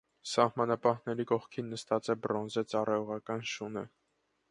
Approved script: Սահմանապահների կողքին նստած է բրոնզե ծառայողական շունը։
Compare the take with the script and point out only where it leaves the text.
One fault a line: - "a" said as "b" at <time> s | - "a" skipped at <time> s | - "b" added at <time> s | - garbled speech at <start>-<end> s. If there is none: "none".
none